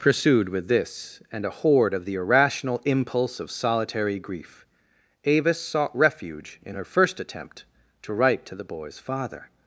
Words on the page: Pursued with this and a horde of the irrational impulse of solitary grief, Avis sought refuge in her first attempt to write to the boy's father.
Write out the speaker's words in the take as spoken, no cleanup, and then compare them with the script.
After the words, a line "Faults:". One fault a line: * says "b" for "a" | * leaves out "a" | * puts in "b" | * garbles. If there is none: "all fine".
Pursued with this and a horde of the irrational impulse of solitary grief, Avis sought refuge in her first attempt to write to the boy's father.
Faults:
all fine